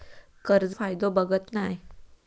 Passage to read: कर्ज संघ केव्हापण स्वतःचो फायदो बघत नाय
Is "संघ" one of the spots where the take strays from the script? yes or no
yes